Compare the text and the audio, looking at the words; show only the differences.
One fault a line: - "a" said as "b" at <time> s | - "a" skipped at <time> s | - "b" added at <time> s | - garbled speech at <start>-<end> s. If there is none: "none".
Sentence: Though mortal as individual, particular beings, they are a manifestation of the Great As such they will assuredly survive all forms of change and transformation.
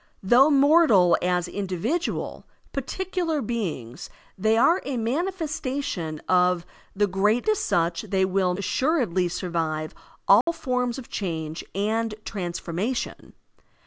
none